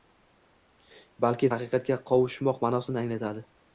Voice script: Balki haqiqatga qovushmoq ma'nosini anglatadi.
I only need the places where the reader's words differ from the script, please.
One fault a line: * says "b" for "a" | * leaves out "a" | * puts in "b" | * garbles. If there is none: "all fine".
all fine